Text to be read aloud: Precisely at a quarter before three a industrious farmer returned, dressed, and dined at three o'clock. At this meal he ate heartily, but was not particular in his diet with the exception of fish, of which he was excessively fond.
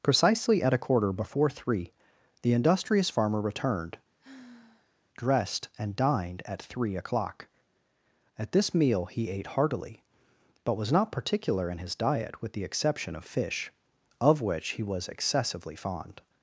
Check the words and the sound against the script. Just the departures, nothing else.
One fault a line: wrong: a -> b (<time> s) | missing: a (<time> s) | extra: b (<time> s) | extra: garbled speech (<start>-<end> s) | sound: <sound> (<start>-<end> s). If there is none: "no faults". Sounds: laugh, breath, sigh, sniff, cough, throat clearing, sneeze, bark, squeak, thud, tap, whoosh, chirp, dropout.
wrong: a -> the (2.4 s)
sound: sigh (4.2-5.0 s)